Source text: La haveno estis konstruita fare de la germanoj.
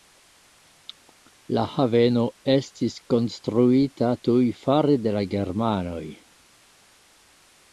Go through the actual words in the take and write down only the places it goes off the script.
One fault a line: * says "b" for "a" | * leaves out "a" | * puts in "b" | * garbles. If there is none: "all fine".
* puts in "tuj"